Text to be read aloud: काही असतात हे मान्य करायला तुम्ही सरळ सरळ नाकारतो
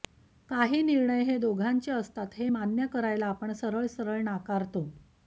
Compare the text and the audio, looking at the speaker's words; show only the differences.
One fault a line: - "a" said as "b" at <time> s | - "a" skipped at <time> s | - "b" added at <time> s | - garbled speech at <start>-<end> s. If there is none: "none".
- "निर्णय हे दोघांचे" added at 0.8 s
- "तुम्ही" said as "आपण" at 3.3 s